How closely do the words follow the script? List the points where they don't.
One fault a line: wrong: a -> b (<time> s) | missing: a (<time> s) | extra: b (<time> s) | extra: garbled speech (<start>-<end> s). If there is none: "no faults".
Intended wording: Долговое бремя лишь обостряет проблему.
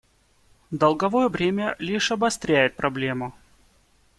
no faults